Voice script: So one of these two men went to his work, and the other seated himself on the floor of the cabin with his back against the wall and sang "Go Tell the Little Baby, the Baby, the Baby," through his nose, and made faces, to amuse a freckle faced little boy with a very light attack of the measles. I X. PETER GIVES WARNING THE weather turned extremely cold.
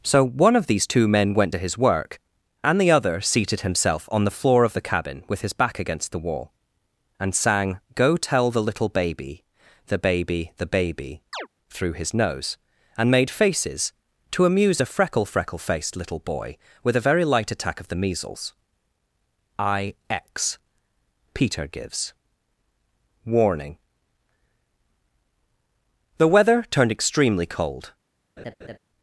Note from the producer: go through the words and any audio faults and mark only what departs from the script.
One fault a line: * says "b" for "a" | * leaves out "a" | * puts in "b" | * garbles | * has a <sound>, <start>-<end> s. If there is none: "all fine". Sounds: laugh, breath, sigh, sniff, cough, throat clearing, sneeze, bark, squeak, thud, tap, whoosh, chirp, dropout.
* has a chirp, 11.3-11.5 s
* puts in "freckle"
* has a laugh, 28.4-28.8 s